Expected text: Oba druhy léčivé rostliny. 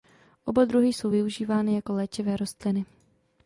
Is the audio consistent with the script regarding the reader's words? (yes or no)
no